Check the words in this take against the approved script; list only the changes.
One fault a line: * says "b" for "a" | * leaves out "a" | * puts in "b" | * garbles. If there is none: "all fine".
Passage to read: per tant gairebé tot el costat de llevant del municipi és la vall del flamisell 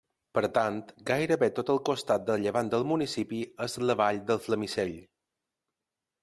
all fine